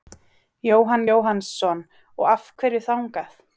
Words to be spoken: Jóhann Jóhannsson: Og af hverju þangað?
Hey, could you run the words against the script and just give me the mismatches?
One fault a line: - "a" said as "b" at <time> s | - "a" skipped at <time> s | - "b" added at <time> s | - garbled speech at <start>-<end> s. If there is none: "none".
none